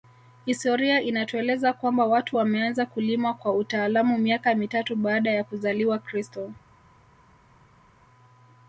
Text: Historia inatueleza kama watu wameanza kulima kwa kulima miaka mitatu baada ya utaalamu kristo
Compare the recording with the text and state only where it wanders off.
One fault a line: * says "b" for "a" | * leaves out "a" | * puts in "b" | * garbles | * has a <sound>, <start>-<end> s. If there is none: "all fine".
* says "kwamba" for "kama"
* says "utaalamu" for "kulima"
* says "kuzaliwa" for "utaalamu"